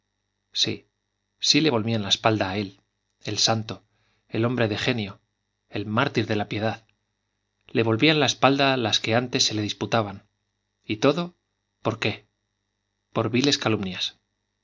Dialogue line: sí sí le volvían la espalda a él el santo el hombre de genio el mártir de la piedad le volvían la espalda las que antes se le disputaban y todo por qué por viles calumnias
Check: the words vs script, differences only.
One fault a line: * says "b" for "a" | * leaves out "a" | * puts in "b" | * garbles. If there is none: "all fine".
all fine